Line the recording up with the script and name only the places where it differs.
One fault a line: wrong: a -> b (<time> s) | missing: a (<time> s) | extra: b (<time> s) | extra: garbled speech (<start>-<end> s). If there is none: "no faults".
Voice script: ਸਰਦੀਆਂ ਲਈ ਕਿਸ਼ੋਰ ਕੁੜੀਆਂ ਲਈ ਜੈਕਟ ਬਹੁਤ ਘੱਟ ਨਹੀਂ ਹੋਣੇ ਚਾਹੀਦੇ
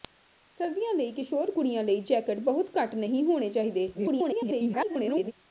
extra: garbled speech (3.9-5.3 s)